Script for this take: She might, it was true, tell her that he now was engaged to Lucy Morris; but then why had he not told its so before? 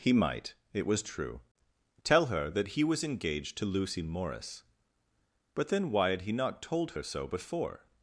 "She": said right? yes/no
no